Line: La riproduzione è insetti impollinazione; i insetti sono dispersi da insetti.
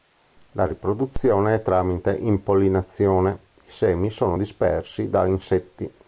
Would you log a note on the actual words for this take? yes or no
yes